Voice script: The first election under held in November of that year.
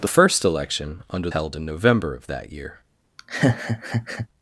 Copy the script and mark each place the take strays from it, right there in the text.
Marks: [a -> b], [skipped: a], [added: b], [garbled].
The first election under held in November of that year.